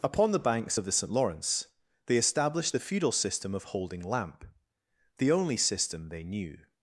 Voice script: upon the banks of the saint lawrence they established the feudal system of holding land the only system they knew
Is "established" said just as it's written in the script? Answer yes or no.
yes